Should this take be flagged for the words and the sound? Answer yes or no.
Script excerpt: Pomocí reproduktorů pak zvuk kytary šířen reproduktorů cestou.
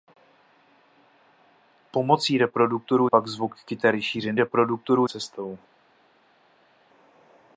no